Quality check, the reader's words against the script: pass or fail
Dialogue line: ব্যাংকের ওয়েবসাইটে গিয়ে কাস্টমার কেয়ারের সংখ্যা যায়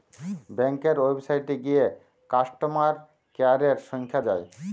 pass